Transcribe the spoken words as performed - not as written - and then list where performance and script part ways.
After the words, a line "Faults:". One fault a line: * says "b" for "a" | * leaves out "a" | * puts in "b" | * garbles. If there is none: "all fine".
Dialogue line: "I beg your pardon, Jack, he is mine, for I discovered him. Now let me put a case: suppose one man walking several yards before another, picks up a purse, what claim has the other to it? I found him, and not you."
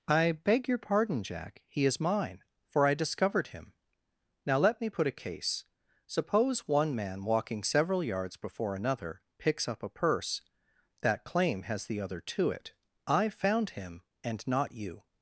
"I beg your pardon, Jack, he is mine, for I discovered him. Now let me put a case: suppose one man walking several yards before another, picks up a purse, that claim has the other to it? I found him, and not you."
Faults:
* says "that" for "what"